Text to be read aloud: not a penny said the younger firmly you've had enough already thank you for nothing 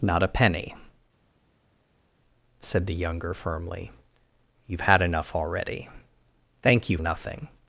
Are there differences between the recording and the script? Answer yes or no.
yes